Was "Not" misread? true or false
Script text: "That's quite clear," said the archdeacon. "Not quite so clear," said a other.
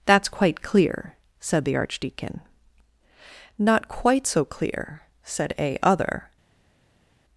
false